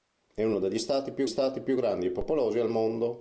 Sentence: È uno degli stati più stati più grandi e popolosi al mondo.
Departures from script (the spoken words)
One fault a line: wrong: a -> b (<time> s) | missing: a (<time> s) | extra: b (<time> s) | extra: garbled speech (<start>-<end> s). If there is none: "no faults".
no faults